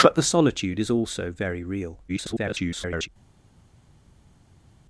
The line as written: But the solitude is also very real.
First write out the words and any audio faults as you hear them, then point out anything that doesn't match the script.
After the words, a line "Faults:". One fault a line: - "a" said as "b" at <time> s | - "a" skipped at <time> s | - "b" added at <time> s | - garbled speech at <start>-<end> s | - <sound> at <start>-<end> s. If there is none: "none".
But the solitude is also very real. [garbled]
Faults:
- garbled speech at 2.1-3.1 s